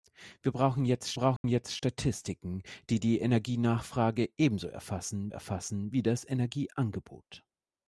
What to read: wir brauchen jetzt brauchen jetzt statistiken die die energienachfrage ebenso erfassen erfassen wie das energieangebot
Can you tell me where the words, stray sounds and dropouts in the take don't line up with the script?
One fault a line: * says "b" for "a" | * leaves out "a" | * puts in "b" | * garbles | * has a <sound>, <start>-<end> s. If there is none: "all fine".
* has a dropout, 1.4-1.4 s